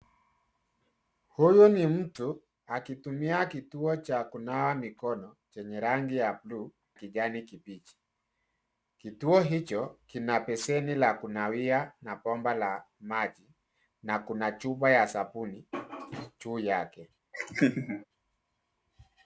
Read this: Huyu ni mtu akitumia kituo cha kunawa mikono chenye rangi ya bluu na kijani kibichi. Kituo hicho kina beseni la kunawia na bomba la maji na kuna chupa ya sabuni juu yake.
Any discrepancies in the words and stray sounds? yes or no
yes